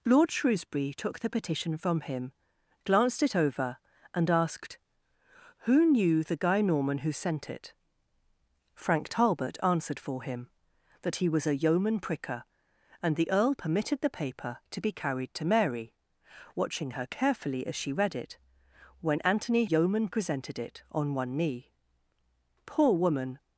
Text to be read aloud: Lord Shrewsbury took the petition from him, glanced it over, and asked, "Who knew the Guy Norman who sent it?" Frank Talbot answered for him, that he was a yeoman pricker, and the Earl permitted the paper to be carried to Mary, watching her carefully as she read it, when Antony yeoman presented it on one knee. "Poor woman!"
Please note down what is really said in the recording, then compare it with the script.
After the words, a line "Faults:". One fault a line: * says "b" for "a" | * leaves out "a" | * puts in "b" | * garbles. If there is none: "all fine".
Lord Shrewsbury took the petition from him, glanced it over, and asked, "Who knew the Guy Norman who sent it?" Frank Talbot answered for him, that he was a yeoman pricker, and the Earl permitted the paper to be carried to Mary, watching her carefully as she read it, when Antony yeoman presented it on one knee. "Poor woman!"
Faults:
all fine